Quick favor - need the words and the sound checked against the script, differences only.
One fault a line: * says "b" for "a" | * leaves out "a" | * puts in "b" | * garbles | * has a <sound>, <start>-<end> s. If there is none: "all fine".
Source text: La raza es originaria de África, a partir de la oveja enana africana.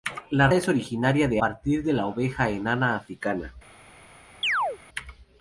* leaves out "raza"
* leaves out "África a"
* has a chirp, 4.4-4.8 s